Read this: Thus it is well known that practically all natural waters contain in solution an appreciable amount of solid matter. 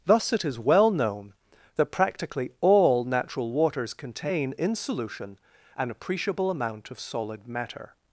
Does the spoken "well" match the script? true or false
true